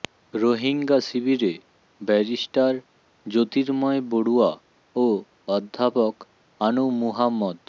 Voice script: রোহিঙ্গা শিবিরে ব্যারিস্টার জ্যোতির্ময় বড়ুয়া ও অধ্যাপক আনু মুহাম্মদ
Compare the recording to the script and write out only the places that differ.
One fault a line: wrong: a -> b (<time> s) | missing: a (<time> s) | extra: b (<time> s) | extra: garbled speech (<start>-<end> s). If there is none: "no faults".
no faults